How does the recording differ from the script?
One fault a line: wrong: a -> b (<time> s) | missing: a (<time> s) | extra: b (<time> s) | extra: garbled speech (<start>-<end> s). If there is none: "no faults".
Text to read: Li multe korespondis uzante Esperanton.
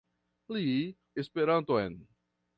missing: multe korespondis uzante (0.7 s)